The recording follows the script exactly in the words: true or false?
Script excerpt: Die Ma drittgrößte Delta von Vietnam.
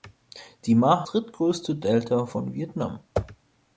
true